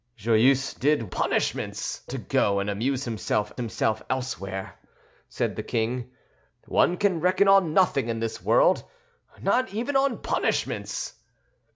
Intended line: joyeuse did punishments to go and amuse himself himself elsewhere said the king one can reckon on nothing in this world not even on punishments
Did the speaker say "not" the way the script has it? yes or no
yes